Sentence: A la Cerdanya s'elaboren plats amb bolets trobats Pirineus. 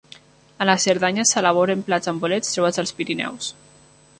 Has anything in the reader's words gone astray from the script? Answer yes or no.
yes